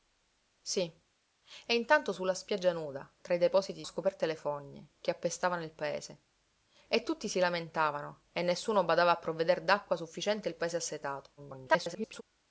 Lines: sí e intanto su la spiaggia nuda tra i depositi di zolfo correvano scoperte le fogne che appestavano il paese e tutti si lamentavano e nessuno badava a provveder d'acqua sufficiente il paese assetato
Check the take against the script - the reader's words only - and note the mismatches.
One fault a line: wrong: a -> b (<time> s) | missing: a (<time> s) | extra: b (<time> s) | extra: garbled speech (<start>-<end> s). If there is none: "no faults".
missing: di zolfo correvano (3.8 s)
extra: garbled speech (11.4-12.2 s)